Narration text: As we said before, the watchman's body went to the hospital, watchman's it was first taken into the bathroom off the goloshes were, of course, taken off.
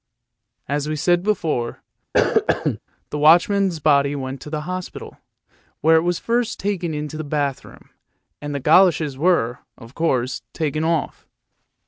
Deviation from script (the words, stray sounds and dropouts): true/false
true